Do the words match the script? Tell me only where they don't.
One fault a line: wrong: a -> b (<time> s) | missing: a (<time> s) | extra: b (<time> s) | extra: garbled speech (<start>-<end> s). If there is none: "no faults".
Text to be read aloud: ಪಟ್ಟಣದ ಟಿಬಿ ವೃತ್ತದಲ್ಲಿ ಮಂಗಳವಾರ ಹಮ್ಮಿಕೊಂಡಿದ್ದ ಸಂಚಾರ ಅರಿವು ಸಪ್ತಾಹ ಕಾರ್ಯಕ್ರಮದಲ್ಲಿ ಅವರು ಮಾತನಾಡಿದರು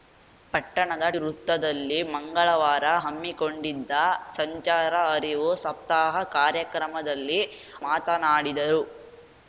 missing: ಟಿಬಿ (1.1 s)
missing: ಅವರು (7.4 s)